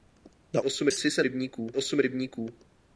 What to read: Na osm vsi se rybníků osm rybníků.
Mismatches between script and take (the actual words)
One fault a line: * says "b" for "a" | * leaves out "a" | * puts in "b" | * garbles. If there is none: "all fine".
all fine